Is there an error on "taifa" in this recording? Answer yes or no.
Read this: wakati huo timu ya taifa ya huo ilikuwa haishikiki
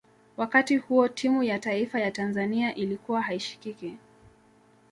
no